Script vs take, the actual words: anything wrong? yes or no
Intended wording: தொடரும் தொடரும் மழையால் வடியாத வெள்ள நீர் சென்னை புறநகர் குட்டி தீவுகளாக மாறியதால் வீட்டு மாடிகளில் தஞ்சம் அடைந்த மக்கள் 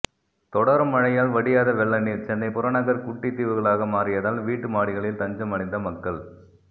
yes